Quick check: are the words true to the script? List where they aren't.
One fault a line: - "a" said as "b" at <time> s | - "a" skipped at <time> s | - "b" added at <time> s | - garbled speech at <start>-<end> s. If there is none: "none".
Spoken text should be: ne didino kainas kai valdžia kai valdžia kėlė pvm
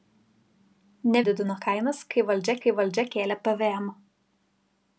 none